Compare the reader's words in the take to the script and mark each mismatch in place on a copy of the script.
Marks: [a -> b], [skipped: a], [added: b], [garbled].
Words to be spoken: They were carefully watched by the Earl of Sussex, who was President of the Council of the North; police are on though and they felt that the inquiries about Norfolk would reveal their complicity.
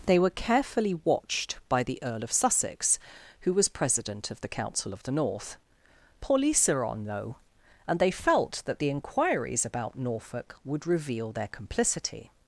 They were carefully watched by the Earl of Sussex, who was President of the Council of the North; police are on though and they felt that the inquiries about Norfolk would reveal their complicity.